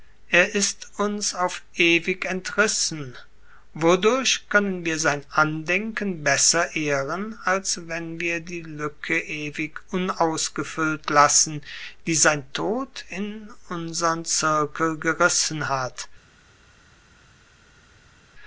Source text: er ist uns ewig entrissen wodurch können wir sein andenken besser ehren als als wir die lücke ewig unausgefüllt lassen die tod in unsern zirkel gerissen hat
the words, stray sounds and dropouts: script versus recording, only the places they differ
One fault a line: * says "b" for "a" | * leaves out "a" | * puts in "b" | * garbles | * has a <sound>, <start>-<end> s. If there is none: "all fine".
* puts in "auf"
* says "wenn" for "als"
* puts in "sein"